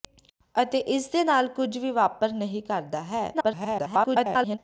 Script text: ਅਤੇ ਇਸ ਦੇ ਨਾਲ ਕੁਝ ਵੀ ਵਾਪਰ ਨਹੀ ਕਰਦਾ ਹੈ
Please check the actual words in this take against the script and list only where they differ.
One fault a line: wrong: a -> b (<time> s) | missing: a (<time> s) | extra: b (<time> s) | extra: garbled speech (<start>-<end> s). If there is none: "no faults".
extra: garbled speech (3.3-4.6 s)